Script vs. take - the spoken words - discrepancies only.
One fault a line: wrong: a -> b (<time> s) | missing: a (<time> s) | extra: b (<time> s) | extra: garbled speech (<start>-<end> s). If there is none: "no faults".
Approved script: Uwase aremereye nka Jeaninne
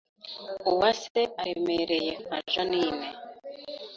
no faults